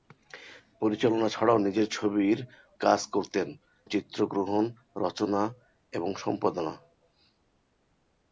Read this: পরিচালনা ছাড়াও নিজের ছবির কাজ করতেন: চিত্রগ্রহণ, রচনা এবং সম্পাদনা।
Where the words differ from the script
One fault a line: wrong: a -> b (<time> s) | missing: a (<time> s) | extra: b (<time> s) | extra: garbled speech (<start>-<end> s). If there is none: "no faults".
no faults